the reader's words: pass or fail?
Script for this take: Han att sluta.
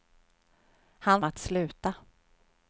pass